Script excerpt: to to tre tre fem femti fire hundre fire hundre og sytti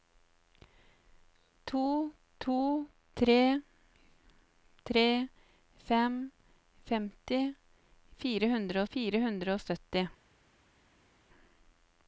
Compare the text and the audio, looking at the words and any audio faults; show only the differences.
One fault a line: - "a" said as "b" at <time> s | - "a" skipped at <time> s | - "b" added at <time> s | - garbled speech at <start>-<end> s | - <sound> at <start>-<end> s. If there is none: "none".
none